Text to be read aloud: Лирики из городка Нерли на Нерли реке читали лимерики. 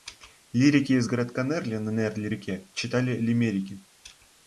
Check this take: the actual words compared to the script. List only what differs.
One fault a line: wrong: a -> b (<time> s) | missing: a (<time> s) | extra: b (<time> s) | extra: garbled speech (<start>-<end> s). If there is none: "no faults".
no faults